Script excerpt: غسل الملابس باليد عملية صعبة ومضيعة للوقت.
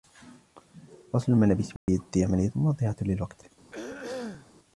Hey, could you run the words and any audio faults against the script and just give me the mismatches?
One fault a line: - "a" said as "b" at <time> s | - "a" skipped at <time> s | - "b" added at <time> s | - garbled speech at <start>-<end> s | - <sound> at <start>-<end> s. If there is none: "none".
- dropout at 1.8-1.9 s
- "صعبة" skipped at 2.5 s
- throat clearing at 3.7-4.5 s